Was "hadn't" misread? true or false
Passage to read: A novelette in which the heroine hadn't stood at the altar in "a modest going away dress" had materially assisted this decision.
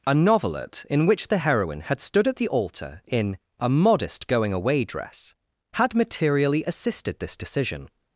true